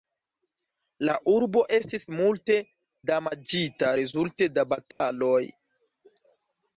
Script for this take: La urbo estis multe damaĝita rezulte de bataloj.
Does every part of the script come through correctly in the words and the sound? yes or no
no